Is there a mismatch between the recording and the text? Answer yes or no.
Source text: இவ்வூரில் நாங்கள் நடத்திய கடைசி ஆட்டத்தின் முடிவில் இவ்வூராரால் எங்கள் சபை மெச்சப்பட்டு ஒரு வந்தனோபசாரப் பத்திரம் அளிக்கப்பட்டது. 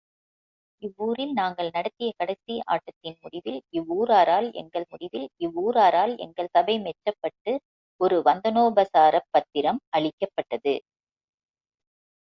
yes